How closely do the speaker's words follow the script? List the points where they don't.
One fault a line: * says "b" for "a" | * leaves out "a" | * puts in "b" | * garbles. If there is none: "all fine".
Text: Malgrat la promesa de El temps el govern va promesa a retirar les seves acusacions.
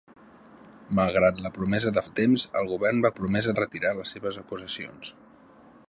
all fine